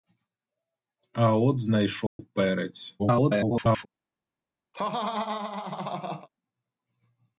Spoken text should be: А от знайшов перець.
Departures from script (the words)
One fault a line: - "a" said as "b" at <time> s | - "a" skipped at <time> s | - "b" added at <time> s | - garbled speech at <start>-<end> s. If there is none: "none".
- garbled speech at 3.0-3.9 s